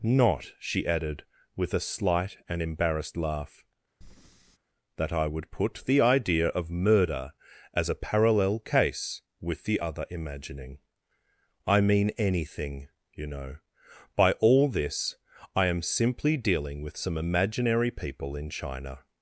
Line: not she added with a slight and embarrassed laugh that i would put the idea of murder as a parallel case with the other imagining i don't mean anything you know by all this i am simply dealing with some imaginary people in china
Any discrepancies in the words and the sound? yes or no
yes